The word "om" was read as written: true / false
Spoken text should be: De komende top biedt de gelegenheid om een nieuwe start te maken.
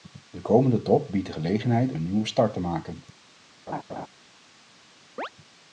false